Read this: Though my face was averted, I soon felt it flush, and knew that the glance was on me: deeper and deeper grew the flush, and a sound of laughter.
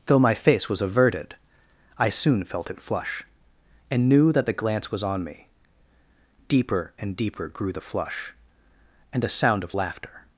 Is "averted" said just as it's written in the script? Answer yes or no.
yes